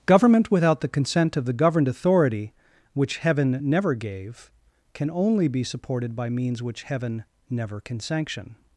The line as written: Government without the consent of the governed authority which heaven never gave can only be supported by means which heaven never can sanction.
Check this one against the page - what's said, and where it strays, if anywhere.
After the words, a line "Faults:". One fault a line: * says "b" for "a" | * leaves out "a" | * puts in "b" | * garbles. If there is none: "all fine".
Government without the consent of the governed authority which heaven never gave can only be supported by means which heaven never can sanction.
Faults:
all fine